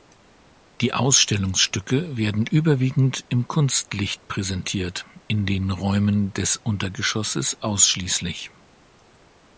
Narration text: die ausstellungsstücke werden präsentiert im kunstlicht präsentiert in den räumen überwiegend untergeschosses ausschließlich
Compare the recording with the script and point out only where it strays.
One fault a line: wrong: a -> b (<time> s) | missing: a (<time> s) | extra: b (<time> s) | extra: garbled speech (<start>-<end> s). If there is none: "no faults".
wrong: präsentiert -> überwiegend (2.5 s)
wrong: überwiegend -> des (6.3 s)